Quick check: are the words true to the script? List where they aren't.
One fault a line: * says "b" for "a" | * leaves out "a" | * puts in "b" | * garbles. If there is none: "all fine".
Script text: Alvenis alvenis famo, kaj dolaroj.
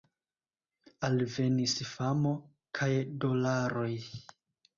* leaves out "alvenis"